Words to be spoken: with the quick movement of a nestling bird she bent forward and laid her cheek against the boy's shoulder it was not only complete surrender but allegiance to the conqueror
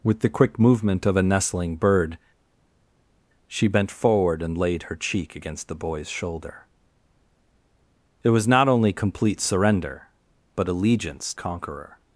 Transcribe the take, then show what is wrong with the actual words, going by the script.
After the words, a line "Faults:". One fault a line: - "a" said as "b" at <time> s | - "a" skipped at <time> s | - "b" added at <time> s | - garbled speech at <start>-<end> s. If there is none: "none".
with the quick movement of a nestling bird she bent forward and laid her cheek against the boy's shoulder it was not only complete surrender but allegiance conqueror
Faults:
- "to the" skipped at 11.3 s